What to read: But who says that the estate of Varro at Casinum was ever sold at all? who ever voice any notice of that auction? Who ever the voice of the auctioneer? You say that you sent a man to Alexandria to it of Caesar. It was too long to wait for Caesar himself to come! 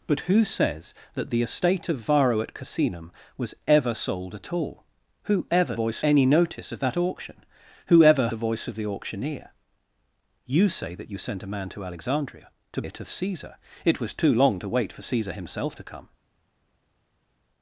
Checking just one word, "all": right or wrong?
right